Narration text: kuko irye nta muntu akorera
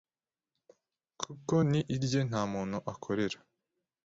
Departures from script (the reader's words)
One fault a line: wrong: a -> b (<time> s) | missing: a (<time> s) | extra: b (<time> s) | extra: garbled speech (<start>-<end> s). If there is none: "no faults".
extra: ni (1.7 s)